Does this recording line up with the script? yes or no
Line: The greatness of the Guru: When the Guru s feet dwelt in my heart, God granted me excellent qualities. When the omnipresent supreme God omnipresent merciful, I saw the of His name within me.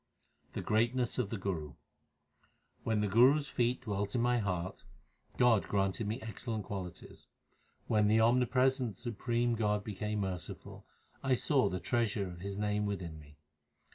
no